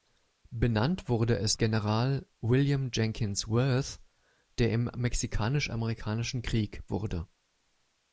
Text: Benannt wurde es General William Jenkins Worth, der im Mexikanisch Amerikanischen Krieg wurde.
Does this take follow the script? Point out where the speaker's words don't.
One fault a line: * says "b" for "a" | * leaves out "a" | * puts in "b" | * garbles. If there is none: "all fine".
all fine